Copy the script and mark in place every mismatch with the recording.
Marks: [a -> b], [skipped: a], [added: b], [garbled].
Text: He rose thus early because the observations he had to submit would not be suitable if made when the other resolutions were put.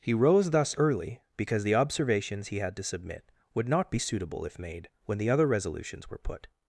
He rose thus early because the observations he had to submit would not be suitable if made when the other resolutions were put.